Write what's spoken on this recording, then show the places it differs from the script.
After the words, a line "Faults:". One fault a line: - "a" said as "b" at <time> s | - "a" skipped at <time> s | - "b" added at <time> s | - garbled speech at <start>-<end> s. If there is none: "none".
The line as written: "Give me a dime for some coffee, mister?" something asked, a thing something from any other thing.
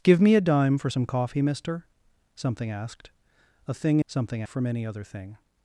"Give me a dime for some coffee, mister?" something asked, a thing something from any other thing.
Faults:
none